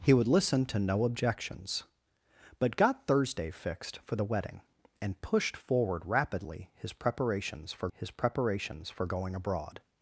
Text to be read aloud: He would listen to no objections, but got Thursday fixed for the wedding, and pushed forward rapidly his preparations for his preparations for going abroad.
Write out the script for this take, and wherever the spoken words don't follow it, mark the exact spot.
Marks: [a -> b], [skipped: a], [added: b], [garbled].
He would listen to no objections, but got Thursday fixed for the wedding, and pushed forward rapidly his preparations for his preparations for going abroad.